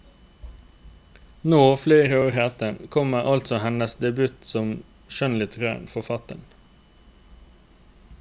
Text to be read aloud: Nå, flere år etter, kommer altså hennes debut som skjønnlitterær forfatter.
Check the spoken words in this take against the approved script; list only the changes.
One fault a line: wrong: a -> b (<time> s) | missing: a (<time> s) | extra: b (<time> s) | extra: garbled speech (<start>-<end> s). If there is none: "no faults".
no faults